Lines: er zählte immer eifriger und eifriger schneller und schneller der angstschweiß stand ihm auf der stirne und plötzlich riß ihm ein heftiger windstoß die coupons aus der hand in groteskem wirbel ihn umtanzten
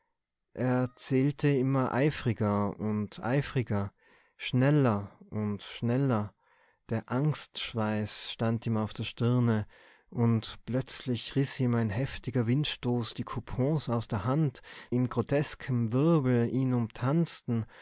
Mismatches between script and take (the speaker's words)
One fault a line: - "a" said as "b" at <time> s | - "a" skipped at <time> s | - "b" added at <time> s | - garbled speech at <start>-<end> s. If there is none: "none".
none